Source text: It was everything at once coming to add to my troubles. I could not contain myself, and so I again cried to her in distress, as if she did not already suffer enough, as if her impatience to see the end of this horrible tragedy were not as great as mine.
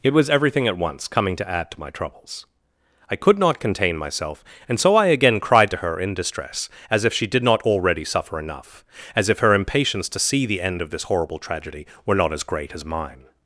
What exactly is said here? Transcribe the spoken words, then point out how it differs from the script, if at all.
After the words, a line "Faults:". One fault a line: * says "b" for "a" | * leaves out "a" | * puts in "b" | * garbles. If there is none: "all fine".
It was everything at once coming to add to my troubles. I could not contain myself, and so I again cried to her in distress, as if she did not already suffer enough, as if her impatience to see the end of this horrible tragedy were not as great as mine.
Faults:
all fine